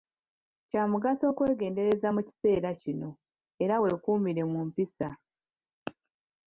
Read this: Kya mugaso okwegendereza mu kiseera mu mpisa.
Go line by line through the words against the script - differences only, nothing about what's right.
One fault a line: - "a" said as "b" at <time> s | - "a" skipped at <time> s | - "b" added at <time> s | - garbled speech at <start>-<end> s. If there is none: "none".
- "kino era weekuumire" added at 2.8 s